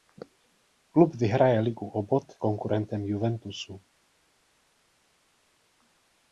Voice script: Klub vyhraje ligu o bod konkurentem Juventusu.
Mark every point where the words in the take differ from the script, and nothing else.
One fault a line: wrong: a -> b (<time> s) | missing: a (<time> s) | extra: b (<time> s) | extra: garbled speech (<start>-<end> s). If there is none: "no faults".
no faults